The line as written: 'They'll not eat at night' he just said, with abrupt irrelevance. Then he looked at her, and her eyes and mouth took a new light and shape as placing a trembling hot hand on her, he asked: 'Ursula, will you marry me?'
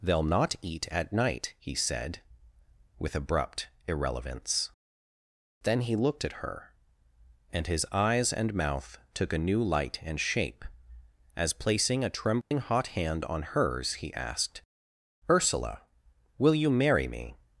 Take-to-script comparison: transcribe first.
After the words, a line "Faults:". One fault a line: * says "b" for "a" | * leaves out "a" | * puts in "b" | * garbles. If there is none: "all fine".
'They'll not eat at night' he said, with abrupt irrelevance. Then he looked at her, and his eyes and mouth took a new light and shape as placing a trembling hot hand on hers, he asked: 'Ursula, will you marry me?'
Faults:
* leaves out "just"
* says "his" for "her"
* says "hers" for "her"